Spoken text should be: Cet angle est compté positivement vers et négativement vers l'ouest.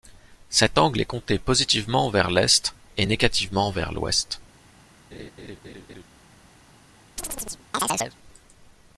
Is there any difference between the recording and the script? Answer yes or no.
yes